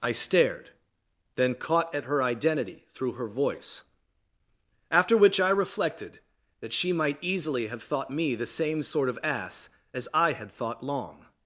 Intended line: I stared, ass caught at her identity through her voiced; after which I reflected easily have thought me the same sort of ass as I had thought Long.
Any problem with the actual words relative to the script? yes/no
yes